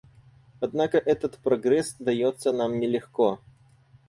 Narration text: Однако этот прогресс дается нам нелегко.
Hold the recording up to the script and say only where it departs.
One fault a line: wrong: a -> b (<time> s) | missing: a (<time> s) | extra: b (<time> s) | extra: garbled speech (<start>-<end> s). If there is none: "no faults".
no faults